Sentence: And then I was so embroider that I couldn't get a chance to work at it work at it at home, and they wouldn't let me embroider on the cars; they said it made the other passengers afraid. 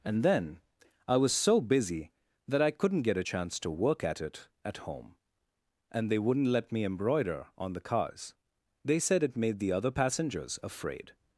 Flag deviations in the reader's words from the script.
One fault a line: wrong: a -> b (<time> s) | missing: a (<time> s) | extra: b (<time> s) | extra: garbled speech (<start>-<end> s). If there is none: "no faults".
wrong: embroider -> busy (1.6 s)
missing: work at it (4.5 s)